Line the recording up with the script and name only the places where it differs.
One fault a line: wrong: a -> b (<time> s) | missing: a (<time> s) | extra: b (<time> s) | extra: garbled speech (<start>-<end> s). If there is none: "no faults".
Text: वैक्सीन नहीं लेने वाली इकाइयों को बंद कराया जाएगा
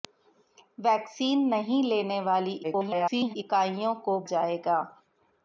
extra: garbled speech (2.6-3.4 s)
missing: बंद कराया (4.2 s)